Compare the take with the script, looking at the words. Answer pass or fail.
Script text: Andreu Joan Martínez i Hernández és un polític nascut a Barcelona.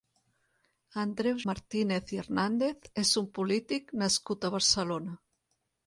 fail